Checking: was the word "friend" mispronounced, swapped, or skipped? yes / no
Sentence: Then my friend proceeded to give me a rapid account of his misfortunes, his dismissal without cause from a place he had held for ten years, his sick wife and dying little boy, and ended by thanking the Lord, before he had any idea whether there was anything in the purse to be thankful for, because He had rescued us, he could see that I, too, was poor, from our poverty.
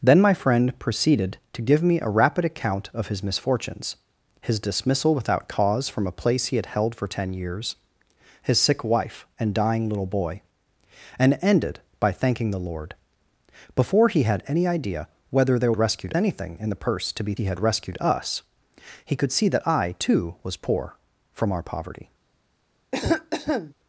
no